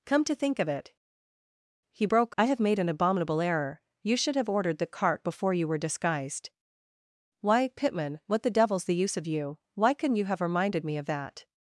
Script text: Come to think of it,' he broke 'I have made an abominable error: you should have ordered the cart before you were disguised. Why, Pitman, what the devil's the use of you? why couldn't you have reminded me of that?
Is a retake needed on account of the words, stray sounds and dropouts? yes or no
no